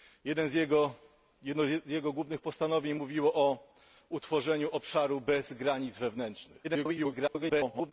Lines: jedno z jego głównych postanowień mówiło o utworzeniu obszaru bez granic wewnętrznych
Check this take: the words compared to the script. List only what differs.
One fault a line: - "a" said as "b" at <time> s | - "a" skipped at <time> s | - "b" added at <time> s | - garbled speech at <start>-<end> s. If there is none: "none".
- garbled speech at 6.6-7.9 s